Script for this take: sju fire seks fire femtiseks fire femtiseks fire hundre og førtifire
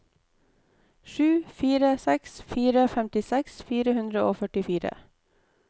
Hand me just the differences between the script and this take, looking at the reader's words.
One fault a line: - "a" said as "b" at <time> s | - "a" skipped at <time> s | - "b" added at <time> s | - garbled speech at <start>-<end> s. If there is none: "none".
- "femtiseks fire" skipped at 4.0 s